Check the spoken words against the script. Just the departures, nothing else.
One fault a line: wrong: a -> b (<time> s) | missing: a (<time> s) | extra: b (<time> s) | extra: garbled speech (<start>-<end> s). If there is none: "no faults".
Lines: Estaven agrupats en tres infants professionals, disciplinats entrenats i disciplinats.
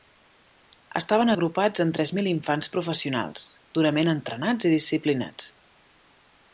extra: mil (2.2 s)
wrong: disciplinats -> durament (3.8 s)